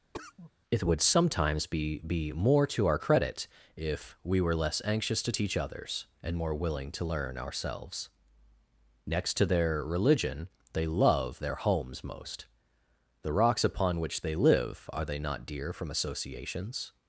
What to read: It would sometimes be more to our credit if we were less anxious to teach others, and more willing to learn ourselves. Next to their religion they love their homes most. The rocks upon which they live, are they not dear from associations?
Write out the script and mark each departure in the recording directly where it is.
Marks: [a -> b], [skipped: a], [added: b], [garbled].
It would sometimes be [added: be] more to our credit if we were less anxious to teach others, and more willing to learn ourselves. Next to their religion they love their homes most. The rocks upon which they live, are they not dear from associations?